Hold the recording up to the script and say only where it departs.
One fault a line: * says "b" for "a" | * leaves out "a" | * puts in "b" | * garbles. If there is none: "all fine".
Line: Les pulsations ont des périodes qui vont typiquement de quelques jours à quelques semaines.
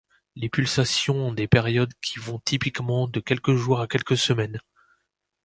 all fine